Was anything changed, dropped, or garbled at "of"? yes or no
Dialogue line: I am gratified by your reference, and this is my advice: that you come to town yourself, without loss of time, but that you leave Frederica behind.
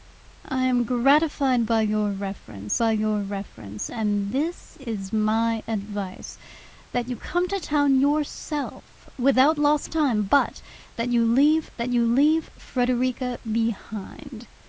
yes